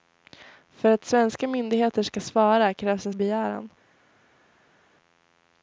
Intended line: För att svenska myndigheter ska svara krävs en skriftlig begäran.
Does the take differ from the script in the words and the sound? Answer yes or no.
yes